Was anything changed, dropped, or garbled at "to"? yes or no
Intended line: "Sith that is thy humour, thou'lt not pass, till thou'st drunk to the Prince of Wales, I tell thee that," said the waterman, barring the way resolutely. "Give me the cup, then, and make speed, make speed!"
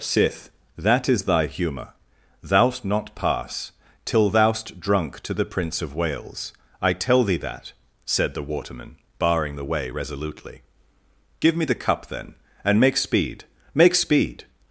no